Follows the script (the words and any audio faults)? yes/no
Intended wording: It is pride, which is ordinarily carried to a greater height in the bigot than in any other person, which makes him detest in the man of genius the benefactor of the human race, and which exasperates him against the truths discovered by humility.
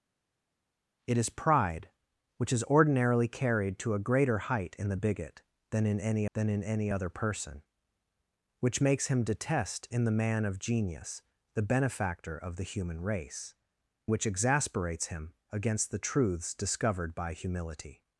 no